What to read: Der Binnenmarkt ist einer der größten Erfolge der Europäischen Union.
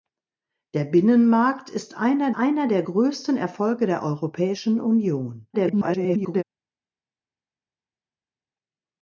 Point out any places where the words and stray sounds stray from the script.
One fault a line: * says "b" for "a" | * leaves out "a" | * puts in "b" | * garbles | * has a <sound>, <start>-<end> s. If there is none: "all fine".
* puts in "einer"
* garbles